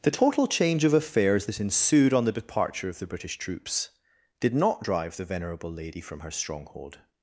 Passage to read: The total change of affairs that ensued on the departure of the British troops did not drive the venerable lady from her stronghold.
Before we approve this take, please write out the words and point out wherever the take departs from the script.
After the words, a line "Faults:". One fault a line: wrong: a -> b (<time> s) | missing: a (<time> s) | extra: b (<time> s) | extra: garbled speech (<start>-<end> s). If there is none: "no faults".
The total change of affairs that ensued on the departure of the British troops did not drive the venerable lady from her stronghold.
Faults:
no faults